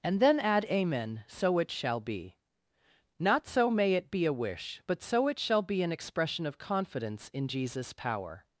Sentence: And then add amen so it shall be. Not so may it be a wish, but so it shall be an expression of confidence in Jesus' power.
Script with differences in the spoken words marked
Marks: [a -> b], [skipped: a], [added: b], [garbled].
And then add amen so it shall be. Not so may it be a wish, but so it shall be an expression of confidence in Jesus' power.